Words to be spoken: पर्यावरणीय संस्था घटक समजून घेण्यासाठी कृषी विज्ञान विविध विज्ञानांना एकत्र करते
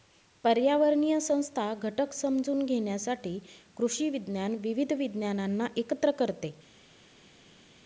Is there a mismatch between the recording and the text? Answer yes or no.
no